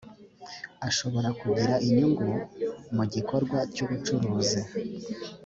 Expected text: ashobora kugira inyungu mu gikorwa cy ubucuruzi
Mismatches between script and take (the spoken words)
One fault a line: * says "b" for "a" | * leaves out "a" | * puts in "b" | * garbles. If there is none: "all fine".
all fine